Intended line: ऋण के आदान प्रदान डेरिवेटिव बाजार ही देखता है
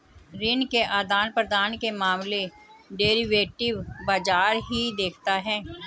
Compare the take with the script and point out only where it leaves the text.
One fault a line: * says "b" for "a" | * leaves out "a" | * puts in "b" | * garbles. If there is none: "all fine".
* puts in "के मामले"